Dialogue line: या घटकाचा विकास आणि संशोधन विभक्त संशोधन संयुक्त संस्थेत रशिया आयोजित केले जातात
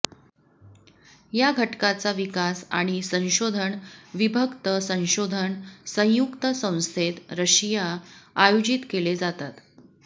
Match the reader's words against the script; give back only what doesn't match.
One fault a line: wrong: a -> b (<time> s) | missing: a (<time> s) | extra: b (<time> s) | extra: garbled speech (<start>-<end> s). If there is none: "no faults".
no faults